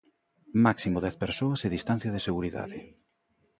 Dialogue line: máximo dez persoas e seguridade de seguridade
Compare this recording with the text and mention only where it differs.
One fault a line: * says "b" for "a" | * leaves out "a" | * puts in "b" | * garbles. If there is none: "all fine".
* says "distancia" for "seguridade"